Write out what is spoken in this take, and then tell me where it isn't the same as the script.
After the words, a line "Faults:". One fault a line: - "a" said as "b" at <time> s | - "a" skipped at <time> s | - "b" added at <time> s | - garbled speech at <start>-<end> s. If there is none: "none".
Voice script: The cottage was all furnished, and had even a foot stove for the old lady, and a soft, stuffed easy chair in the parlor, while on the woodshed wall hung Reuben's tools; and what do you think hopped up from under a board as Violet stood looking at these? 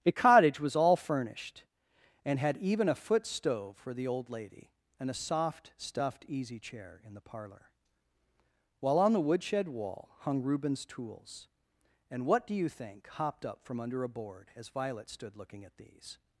A cottage was all furnished, and had even a foot stove for the old lady, and a soft, stuffed easy chair in the parlor, while on the woodshed wall hung Reuben's tools; and what do you think hopped up from under a board as Violet stood looking at these?
Faults:
- "The" said as "A" at 0.0 s